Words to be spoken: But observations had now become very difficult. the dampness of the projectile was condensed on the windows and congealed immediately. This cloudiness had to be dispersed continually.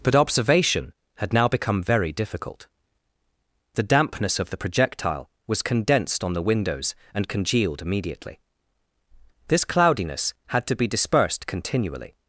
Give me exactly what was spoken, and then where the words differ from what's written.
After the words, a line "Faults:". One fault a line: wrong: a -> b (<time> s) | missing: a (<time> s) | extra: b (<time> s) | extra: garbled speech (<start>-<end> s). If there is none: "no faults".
But observation had now become very difficult. the dampness of the projectile was condensed on the windows and congealed immediately. This cloudiness had to be dispersed continually.
Faults:
wrong: observations -> observation (0.1 s)